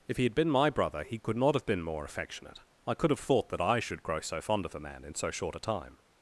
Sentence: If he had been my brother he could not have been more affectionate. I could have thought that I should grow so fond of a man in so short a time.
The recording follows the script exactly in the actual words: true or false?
true